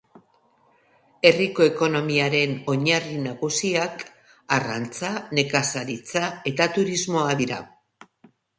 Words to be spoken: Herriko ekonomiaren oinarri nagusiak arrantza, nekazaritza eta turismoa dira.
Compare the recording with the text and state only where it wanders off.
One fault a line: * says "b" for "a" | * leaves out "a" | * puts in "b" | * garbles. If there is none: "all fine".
all fine